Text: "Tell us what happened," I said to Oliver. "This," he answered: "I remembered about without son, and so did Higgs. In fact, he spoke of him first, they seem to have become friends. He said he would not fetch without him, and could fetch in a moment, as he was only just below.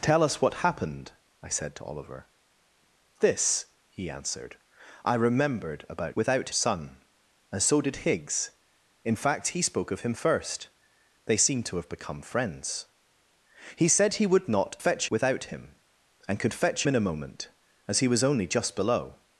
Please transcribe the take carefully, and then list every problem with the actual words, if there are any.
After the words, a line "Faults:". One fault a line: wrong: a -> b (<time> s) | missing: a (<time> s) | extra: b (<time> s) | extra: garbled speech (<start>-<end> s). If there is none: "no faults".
"Tell us what happened," I said to Oliver. "This," he answered: "I remembered about without son, and so did Higgs. In fact, he spoke of him first, they seem to have become friends. He said he would not fetch without him, and could fetch in a moment, as he was only just below.
Faults:
no faults